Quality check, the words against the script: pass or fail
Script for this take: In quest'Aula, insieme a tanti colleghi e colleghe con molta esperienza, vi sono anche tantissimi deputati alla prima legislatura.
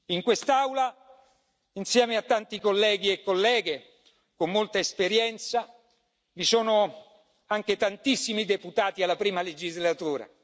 pass